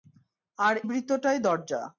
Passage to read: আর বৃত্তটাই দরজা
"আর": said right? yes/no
yes